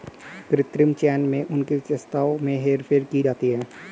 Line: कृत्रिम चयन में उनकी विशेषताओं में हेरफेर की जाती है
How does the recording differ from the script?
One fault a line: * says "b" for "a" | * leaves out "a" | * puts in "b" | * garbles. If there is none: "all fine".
all fine